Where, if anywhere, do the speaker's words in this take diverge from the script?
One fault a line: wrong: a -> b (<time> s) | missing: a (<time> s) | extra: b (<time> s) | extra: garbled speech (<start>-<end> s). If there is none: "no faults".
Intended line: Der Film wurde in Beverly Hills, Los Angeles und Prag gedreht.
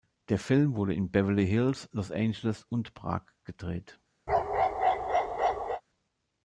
no faults